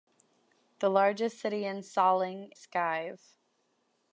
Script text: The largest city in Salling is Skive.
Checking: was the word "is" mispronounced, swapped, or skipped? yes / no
yes